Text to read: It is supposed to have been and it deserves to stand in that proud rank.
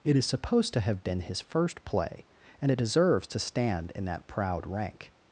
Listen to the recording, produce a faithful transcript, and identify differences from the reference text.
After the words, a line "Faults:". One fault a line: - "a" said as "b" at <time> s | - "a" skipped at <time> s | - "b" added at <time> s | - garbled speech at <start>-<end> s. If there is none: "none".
It is supposed to have been his first play, and it deserves to stand in that proud rank.
Faults:
- "his first play" added at 1.2 s